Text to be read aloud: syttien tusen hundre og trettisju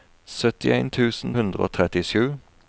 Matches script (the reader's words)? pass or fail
pass